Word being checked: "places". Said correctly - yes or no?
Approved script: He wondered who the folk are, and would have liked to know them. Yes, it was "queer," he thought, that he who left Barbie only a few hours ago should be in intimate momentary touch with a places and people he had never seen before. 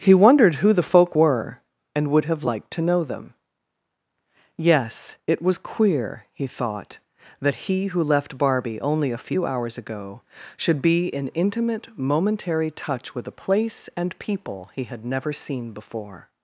no